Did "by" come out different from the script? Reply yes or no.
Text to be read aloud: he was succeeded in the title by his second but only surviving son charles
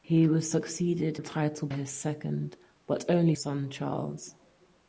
yes